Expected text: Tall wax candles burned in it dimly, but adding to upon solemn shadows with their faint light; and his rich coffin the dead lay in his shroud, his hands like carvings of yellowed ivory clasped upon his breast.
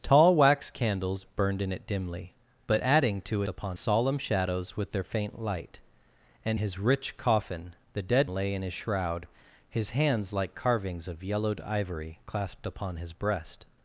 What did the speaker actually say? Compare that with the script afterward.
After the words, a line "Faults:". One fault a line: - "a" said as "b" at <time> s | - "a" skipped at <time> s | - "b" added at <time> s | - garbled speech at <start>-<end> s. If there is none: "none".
Tall wax candles burned in it dimly, but adding to upon solemn shadows with their faint light; and his rich coffin the dead lay in his shroud, his hands like carvings of yellowed ivory clasped upon his breast.
Faults:
none